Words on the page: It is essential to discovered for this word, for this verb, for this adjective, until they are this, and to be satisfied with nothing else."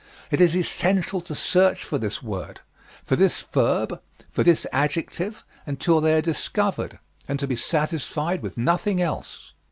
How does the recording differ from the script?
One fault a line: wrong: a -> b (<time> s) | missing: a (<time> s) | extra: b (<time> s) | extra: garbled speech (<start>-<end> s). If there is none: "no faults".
wrong: discovered -> search (1.4 s)
wrong: this -> discovered (6.2 s)